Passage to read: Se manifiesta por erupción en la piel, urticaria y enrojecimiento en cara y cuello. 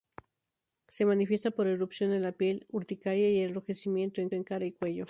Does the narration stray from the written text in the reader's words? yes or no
yes